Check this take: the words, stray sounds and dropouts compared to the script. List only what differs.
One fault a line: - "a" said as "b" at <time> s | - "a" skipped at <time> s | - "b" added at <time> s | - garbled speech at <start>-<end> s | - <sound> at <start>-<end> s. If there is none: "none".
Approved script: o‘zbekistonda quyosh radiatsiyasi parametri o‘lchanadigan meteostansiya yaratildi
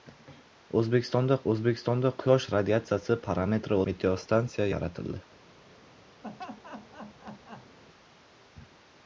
- "o‘zbekistonda" added at 1.5 s
- "o‘lchanadigan" skipped at 3.8 s
- laugh at 6.2-7.8 s